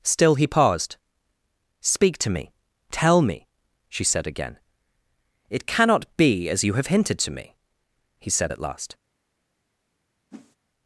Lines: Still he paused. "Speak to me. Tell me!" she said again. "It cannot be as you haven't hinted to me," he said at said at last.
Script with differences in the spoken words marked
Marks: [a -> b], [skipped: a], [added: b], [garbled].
Still he paused. "Speak to me. Tell me!" she said again. "It cannot be as you [haven't -> have] hinted to me," he said at [skipped: said at] last.